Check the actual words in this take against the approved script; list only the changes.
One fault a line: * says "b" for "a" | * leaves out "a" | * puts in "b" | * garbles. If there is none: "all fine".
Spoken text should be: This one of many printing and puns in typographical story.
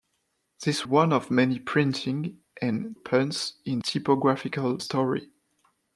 all fine